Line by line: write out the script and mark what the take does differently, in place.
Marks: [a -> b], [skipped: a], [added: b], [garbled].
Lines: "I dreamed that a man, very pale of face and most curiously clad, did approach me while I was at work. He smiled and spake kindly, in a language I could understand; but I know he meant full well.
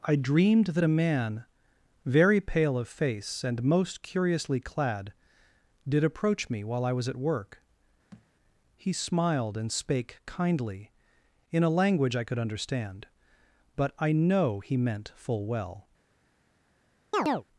"I dreamed that a man, very pale of face and most curiously clad, did approach me while I was at work. He smiled and spake kindly, in a language I could understand; but I know he meant full well.